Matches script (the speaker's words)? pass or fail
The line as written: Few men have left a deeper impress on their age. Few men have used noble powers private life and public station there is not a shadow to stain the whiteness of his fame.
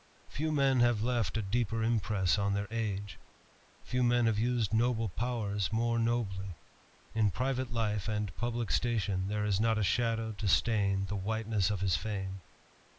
fail